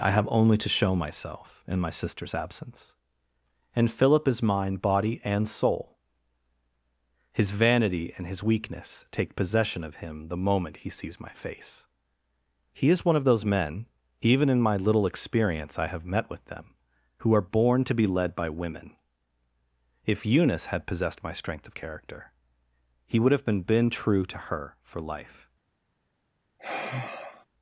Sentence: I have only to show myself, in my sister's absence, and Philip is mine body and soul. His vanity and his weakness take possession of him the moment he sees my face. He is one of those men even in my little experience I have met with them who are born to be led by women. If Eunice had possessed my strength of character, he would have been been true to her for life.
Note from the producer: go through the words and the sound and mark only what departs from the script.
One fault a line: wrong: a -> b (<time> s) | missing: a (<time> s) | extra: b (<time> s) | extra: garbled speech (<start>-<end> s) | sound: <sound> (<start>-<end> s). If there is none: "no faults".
sound: sigh (26.6-27.5 s)